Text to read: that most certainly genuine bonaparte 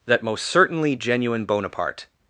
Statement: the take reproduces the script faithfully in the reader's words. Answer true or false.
true